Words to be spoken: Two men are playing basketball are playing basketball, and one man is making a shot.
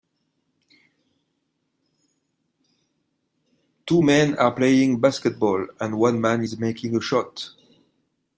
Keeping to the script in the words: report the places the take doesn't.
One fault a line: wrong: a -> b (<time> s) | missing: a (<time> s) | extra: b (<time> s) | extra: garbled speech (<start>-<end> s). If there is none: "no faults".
missing: are playing basketball (5.7 s)